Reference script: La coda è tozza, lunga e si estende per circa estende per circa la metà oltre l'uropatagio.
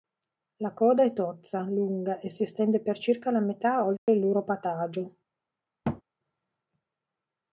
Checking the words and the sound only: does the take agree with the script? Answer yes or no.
no